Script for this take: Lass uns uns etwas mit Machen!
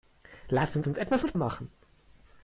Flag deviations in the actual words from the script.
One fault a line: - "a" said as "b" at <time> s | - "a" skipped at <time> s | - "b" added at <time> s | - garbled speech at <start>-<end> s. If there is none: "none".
none